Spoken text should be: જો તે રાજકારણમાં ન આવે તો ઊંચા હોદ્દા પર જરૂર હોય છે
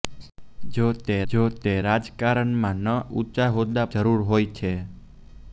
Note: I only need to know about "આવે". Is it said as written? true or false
false